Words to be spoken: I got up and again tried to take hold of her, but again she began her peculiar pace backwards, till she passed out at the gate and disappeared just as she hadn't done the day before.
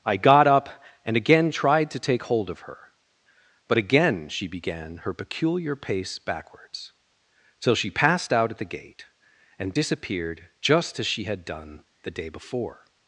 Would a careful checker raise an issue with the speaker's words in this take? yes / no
yes